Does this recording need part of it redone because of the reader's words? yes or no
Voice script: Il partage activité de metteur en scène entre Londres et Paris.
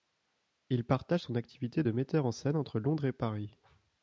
yes